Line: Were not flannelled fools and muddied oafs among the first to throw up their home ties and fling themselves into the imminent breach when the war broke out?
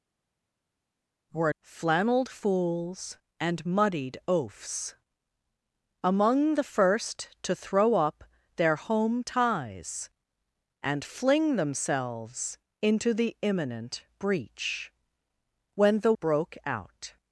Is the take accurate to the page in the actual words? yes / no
no